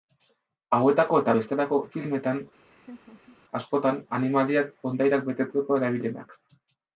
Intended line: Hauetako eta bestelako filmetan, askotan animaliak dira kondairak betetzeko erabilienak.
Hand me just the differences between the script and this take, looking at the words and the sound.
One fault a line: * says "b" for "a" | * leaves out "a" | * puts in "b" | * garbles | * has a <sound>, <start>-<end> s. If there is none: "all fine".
* has a laugh, 2.7-3.4 s
* leaves out "dira"